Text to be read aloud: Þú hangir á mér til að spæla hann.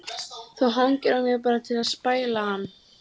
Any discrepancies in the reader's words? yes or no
yes